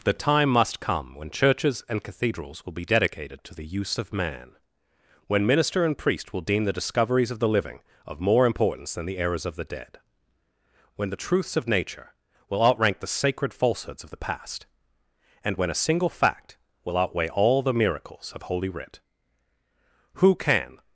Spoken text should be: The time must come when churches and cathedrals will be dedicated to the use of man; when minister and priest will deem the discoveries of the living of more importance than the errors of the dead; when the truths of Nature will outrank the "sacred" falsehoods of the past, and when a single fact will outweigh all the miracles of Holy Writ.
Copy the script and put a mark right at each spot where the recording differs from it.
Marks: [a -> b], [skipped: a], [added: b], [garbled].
The time must come when churches and cathedrals will be dedicated to the use of man; when minister and priest will deem the discoveries of the living of more importance than the errors of the dead; when the truths of Nature will outrank the "sacred" falsehoods of the past, and when a single fact will outweigh all the miracles of Holy Writ. [added: Who can]